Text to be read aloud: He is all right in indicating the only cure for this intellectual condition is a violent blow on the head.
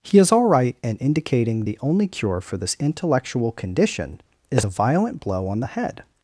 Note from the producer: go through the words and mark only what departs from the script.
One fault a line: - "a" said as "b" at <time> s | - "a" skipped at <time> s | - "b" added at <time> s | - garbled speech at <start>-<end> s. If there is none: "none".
none